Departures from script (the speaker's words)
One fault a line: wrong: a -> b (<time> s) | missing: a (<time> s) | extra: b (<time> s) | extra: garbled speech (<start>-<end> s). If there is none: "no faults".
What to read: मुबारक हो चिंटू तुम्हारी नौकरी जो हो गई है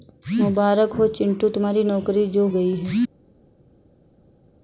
missing: हो (2.5 s)